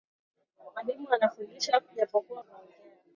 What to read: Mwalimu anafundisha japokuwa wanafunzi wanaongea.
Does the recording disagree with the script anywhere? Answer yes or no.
yes